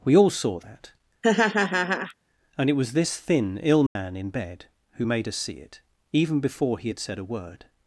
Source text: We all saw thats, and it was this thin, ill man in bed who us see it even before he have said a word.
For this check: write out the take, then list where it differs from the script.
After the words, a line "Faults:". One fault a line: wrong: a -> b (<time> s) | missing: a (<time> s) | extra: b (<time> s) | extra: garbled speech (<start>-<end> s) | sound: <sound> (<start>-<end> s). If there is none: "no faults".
We all saw that, and it was this thin, ill man in bed who made us see it even before he had said a word.
Faults:
wrong: thats -> that (0.6 s)
sound: laugh (1.2-2.1 s)
sound: dropout (3.9-4.0 s)
extra: made (5.0 s)
wrong: have -> had (6.9 s)